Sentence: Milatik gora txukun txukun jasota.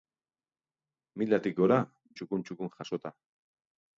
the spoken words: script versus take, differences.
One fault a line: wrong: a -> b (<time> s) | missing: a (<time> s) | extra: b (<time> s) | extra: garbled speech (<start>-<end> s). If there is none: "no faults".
no faults